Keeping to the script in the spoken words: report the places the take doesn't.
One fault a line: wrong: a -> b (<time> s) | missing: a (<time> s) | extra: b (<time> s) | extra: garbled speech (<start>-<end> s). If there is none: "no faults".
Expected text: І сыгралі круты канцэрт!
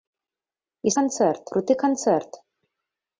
wrong: сыгралі -> канцэрт (1.0 s)